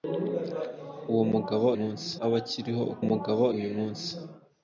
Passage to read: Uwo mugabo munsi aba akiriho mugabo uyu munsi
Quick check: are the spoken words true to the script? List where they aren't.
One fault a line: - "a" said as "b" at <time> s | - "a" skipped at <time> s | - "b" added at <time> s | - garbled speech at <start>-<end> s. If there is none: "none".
none